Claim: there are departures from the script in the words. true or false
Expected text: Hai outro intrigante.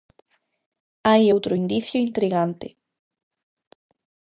true